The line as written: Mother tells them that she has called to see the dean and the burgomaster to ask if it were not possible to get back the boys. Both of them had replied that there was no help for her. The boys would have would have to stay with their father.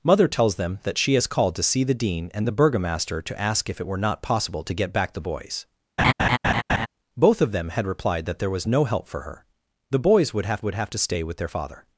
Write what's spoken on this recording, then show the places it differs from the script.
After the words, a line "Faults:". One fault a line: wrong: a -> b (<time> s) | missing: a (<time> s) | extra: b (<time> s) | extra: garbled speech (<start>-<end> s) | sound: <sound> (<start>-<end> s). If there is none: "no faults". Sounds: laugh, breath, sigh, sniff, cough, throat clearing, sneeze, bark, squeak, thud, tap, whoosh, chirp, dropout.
Mother tells them that she has called to see the dean and the burgomaster to ask if it were not possible to get back the boys. Both of them had replied that there was no help for her. The boys would have would have to stay with their father.
Faults:
sound: laugh (6.0-6.9 s)